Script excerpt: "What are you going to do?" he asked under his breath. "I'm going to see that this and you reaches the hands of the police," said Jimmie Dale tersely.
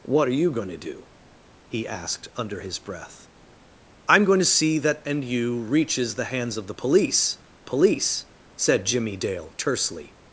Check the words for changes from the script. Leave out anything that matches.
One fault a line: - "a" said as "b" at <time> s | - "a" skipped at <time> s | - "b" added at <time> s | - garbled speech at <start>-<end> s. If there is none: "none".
- "this" skipped at 5.1 s
- "police" added at 7.6 s